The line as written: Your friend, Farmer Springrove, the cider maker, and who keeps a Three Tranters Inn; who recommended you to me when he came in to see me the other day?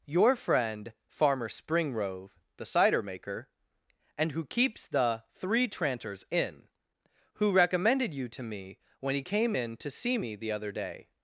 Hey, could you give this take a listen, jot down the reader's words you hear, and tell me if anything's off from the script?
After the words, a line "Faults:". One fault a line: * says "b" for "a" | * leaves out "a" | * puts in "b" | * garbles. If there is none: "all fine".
Your friend, Farmer Springrove, the cider maker, and who keeps the Three Tranters Inn; who recommended you to me when he came in to see me the other day?
Faults:
* says "the" for "a"